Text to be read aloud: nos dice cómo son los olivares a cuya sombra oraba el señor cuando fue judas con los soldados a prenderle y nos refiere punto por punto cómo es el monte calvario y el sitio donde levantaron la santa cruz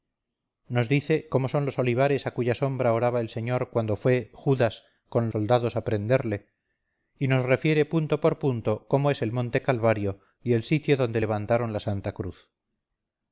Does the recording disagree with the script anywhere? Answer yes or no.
yes